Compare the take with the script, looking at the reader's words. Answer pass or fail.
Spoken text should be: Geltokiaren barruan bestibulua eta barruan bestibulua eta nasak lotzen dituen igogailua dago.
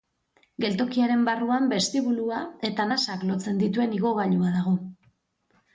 fail